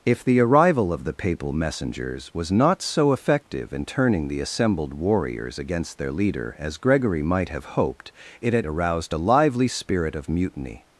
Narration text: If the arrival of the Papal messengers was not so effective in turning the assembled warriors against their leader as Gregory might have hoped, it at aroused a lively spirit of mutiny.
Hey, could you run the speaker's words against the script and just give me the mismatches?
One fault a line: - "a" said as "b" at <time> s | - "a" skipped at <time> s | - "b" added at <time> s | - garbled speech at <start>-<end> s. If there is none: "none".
none